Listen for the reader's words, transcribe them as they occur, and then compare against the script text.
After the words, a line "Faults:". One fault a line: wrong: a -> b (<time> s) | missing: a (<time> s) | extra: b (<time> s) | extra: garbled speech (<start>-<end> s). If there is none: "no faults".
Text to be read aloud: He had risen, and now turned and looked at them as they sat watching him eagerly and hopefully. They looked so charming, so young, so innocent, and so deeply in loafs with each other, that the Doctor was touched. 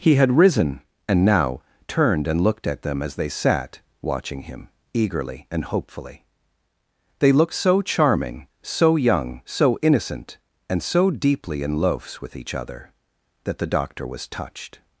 He had risen, and now turned and looked at them as they sat watching him eagerly and hopefully. They looked so charming, so young, so innocent, and so deeply in loafs with each other, that the Doctor was touched.
Faults:
no faults